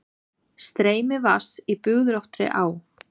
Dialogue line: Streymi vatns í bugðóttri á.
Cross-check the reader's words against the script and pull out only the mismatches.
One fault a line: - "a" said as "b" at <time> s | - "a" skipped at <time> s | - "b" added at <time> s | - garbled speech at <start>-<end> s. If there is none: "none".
none